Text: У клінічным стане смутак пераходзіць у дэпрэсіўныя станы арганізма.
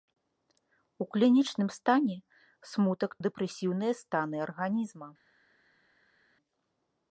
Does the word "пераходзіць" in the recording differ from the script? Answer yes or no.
yes